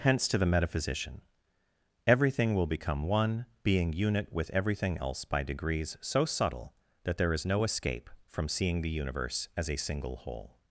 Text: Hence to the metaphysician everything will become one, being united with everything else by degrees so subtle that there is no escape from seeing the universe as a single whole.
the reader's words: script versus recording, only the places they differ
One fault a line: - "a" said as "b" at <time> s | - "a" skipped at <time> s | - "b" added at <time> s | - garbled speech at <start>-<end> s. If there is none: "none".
- "united" said as "unit" at 3.9 s